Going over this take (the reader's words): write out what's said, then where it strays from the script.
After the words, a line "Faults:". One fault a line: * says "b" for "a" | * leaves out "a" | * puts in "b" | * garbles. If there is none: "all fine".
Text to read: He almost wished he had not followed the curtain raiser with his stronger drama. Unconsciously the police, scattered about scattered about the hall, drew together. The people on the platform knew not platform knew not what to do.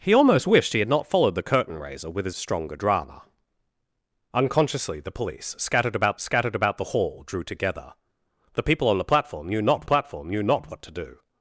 He almost wished he had not followed the curtain raiser with his stronger drama. Unconsciously the police, scattered about scattered about the hall, drew together. The people on the platform knew not platform knew not what to do.
Faults:
all fine